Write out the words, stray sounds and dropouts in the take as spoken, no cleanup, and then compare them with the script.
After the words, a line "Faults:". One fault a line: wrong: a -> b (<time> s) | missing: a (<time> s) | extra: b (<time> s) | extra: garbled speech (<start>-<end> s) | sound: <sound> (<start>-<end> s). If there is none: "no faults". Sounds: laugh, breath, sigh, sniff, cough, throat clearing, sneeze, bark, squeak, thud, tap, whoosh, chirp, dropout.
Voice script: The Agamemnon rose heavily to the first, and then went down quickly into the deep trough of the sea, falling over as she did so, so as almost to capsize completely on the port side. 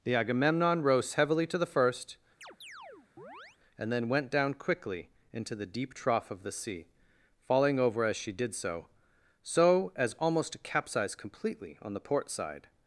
The Agamemnon rose heavily to the first, and then went down quickly into the deep trough of the sea, falling over as she did so, so as almost to capsize completely on the port side.
Faults:
sound: chirp (2.4-3.6 s)